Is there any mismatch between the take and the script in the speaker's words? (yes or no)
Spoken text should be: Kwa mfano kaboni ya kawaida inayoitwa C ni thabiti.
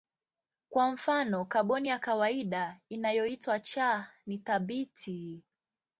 no